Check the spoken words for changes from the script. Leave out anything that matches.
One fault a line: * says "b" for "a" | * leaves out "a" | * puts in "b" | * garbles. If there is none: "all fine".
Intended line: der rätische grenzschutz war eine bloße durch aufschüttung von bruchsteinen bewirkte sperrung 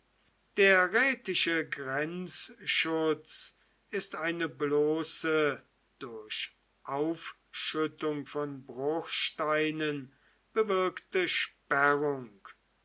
* says "ist" for "war"